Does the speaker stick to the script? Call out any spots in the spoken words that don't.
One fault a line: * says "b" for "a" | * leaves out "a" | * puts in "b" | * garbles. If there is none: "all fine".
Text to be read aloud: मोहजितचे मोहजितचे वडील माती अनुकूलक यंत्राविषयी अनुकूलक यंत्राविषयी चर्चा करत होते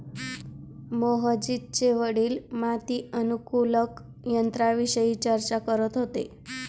* leaves out "मोहजितचे"
* leaves out "अनुकूलक यंत्राविषयी"